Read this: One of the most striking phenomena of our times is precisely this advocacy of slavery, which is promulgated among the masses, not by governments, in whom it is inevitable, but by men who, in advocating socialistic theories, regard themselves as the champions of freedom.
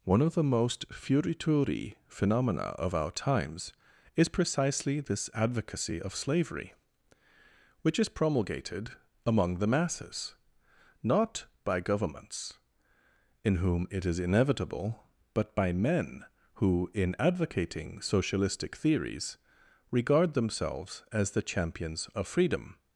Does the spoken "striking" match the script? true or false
false